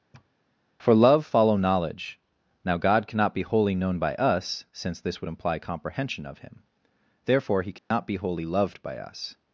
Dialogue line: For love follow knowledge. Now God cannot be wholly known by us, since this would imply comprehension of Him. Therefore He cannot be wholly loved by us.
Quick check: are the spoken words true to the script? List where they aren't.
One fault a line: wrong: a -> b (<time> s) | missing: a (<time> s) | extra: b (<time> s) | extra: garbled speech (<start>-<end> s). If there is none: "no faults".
no faults